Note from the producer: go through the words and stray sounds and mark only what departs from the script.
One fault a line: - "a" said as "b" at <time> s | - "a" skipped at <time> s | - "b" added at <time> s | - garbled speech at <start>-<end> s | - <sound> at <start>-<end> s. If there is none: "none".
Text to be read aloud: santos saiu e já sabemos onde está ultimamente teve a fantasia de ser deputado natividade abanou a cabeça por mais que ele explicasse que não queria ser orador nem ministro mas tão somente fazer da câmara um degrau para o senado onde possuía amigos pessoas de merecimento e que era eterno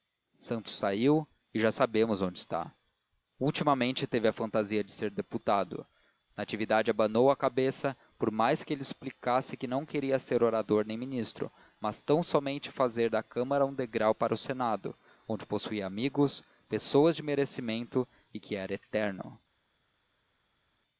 none